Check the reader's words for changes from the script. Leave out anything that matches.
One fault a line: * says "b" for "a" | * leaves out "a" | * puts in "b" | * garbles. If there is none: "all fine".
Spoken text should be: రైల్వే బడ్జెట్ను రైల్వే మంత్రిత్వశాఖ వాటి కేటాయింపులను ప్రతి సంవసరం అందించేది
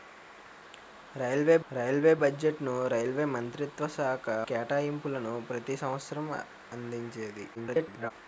* puts in "రైల్వే"
* leaves out "వాటి"
* garbles